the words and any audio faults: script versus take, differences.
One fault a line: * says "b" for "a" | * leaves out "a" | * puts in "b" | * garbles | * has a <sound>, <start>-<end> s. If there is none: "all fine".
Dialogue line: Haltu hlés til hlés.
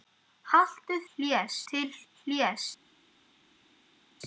all fine